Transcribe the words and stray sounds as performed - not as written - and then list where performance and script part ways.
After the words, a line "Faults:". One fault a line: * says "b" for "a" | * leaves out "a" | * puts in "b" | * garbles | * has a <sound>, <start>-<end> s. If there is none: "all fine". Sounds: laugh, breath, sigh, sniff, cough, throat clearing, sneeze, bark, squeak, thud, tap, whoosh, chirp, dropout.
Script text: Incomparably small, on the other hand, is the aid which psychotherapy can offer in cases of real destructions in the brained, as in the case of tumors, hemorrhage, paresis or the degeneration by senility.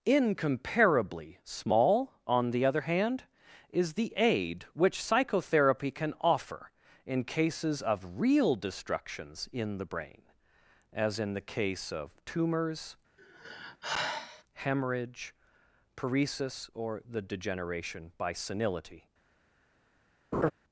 Incomparably small, on the other hand, is the aid which psychotherapy can offer in cases of real destructions in the brain, as in the case of tumors, hemorrhage, paresis or the degeneration by senility.
Faults:
* says "brain" for "brained"
* has a sigh, 13.2-14.4 s
* has a laugh, 20.3-20.5 s